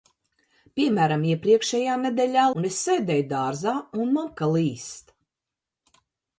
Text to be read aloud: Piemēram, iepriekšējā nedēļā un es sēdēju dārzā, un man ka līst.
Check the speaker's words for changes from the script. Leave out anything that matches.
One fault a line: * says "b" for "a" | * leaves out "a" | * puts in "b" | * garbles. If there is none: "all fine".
all fine